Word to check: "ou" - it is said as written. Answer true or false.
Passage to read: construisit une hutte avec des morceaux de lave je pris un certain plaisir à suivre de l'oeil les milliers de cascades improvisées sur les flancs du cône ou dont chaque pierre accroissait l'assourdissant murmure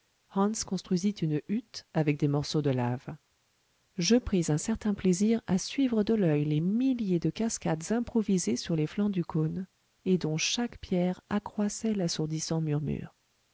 false